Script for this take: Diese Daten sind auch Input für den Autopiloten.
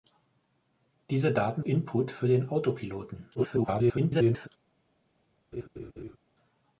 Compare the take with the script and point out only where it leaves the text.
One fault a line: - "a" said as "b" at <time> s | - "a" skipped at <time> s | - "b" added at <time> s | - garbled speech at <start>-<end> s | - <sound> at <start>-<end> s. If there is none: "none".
- "sind auch" skipped at 1.6 s
- garbled speech at 3.3-4.5 s
- laugh at 5.5-6.2 s